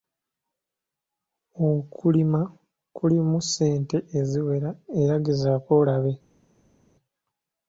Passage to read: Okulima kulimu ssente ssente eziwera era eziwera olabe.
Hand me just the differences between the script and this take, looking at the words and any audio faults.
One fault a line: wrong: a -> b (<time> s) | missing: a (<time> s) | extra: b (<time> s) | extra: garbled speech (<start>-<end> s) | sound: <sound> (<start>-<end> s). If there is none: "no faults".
missing: ssente (4.0 s)
wrong: eziwera -> gezaako (5.2 s)